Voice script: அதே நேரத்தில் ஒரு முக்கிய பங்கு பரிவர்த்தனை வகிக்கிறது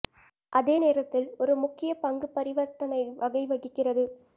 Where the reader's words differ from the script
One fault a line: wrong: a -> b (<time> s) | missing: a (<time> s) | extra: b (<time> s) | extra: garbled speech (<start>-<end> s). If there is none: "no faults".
extra: வகை (3.2 s)